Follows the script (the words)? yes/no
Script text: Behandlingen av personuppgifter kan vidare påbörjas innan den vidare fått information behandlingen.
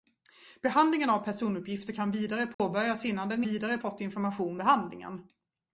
yes